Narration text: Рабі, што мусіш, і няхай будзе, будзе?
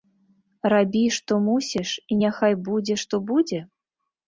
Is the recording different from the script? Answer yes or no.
yes